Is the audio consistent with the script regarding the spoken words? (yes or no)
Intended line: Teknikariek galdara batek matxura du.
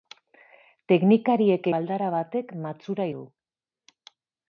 yes